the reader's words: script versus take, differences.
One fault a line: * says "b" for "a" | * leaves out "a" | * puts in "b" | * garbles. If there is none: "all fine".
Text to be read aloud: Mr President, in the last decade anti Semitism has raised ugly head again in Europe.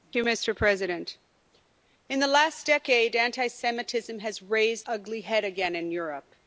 all fine